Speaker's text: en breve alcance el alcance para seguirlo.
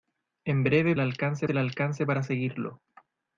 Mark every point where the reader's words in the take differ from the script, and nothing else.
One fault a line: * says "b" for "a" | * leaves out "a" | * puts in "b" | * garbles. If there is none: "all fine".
all fine